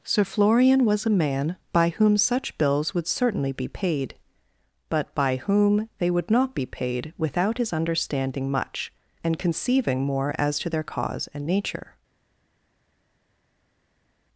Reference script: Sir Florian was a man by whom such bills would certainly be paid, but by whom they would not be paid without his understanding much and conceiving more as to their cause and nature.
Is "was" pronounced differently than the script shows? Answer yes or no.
no